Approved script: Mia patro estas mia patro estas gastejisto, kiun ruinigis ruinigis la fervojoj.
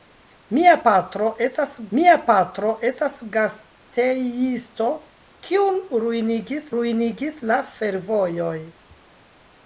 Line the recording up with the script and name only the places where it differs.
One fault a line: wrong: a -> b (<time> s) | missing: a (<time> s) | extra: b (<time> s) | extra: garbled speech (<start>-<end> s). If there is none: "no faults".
no faults